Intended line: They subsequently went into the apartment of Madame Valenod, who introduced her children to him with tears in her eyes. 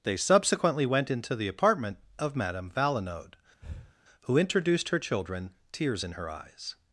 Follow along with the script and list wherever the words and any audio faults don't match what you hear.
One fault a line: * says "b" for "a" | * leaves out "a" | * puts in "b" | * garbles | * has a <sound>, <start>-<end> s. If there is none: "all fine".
* has a breath, 3.6-3.9 s
* leaves out "to him with"